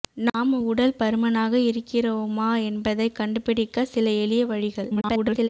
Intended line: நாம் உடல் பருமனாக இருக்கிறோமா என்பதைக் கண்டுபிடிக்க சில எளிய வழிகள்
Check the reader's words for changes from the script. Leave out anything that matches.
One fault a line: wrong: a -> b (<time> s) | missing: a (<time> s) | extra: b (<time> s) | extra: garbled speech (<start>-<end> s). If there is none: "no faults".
extra: garbled speech (4.9-5.5 s)